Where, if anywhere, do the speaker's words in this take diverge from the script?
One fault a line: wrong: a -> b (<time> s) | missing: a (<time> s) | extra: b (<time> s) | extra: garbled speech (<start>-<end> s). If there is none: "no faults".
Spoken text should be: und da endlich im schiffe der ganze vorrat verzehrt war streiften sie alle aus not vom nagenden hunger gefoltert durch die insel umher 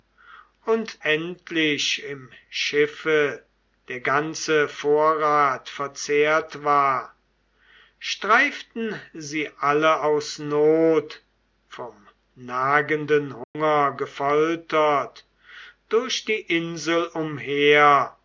missing: da (1.0 s)